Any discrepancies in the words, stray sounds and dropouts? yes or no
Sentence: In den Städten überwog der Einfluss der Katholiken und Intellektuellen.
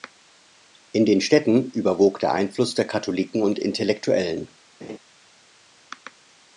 yes